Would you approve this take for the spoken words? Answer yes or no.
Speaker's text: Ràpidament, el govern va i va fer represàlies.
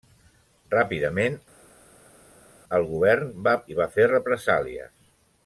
yes